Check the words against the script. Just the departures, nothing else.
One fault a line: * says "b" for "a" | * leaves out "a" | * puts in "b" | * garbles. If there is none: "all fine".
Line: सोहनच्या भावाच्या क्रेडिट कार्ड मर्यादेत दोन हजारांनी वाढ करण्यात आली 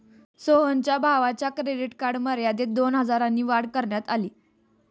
all fine